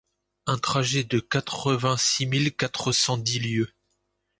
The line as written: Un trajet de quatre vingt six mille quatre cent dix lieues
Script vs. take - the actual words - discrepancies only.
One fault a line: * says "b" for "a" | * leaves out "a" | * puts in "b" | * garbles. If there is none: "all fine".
all fine